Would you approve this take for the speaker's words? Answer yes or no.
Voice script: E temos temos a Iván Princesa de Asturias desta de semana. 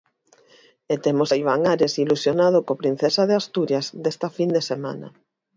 no